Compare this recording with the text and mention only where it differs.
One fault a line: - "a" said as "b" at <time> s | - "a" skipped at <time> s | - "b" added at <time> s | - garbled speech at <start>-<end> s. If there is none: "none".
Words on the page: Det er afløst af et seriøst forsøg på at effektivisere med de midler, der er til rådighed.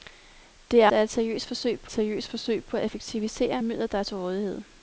- "afløst" skipped at 0.9 s
- "seriøst forsøg på" added at 1.9 s
- "med de" skipped at 3.6 s